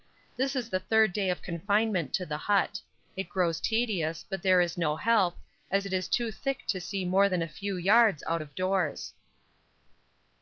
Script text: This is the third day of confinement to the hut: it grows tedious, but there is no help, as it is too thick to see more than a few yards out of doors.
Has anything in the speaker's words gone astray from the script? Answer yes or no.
no